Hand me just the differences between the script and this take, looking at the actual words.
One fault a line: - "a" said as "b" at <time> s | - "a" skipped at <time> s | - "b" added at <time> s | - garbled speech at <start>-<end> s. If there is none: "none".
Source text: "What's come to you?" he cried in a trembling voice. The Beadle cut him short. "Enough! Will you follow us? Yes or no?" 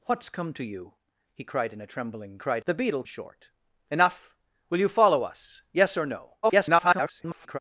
- "voice" said as "cried" at 2.4 s
- "cut him" skipped at 3.0 s
- garbled speech at 6.4-7.6 s